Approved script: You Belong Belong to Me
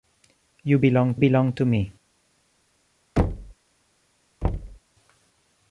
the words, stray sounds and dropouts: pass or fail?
fail